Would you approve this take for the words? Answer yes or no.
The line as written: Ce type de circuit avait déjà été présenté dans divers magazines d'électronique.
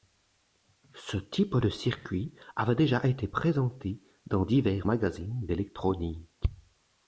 yes